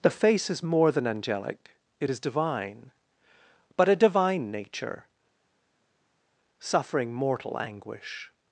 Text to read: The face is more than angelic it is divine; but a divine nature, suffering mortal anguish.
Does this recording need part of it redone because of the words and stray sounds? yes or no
no